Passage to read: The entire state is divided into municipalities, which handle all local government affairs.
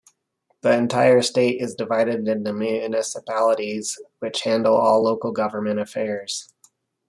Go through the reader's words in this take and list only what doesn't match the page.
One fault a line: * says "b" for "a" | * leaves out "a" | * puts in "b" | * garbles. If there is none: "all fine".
all fine